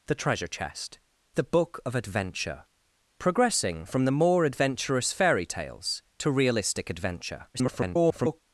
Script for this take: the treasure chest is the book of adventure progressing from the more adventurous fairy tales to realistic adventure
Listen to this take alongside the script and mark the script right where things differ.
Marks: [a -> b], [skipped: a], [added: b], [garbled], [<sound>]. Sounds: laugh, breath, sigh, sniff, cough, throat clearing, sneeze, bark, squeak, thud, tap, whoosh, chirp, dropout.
the treasure chest [skipped: is] the book of adventure progressing from the more adventurous fairy tales to realistic adventure [garbled]